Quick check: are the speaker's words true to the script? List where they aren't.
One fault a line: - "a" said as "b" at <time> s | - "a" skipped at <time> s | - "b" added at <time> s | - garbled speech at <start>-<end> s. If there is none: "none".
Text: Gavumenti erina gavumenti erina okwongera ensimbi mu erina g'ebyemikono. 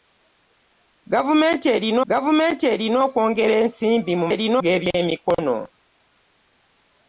none